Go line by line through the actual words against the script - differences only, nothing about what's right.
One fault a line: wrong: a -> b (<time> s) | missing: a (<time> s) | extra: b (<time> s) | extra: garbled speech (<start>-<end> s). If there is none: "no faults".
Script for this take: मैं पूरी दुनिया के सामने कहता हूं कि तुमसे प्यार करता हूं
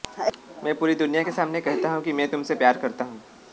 extra: मैं (2.1 s)